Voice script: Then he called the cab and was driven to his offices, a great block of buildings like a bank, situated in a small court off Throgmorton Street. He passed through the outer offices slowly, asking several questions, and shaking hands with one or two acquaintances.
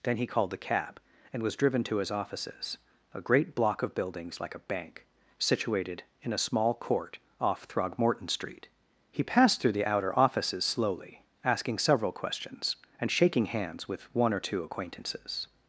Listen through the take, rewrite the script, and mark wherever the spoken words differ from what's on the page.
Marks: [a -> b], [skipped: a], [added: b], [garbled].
Then he called the cab and was driven to his offices, a great block of buildings like a bank, situated in a small court off Throgmorton Street. He passed through the outer offices slowly, asking several questions, and shaking hands with one or two acquaintances.